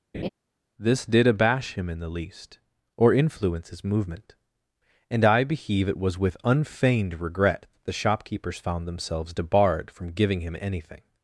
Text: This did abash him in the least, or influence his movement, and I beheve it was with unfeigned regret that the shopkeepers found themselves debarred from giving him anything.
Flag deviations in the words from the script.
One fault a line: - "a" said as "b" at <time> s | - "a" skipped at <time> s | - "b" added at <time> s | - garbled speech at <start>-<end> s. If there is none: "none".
none